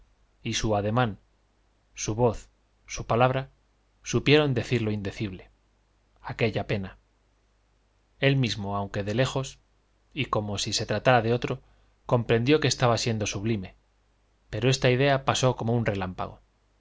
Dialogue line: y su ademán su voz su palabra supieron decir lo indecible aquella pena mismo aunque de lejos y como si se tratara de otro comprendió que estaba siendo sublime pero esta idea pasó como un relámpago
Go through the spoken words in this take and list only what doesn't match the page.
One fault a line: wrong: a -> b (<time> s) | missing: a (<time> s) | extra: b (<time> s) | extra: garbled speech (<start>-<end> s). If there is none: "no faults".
extra: él (8.2 s)